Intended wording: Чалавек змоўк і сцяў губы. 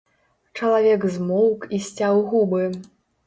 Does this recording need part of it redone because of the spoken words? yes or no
no